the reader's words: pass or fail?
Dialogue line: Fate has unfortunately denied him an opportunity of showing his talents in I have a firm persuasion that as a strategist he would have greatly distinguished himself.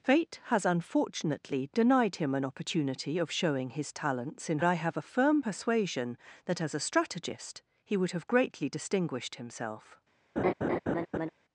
pass